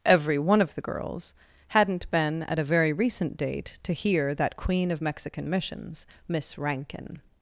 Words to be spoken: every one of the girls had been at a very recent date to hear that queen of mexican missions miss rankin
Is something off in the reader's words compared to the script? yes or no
yes